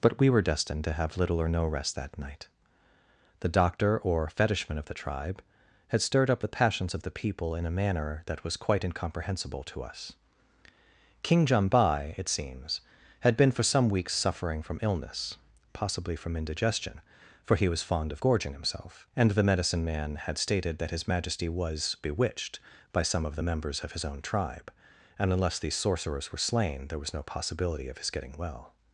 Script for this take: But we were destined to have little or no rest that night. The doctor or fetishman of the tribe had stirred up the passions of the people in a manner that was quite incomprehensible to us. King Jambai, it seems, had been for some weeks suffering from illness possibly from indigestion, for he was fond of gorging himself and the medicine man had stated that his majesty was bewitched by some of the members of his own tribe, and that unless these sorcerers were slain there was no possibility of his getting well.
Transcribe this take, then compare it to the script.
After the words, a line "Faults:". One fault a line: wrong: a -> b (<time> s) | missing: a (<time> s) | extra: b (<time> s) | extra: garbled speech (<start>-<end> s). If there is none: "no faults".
But we were destined to have little or no rest that night. The doctor or fetishman of the tribe had stirred up the passions of the people in a manner that was quite incomprehensible to us. King Jambai, it seems, had been for some weeks suffering from illness possibly from indigestion, for he was fond of gorging himself and the medicine man had stated that his majesty was bewitched by some of the members of his own tribe, and unless these sorcerers were slain there was no possibility of his getting well.
Faults:
missing: that (25.3 s)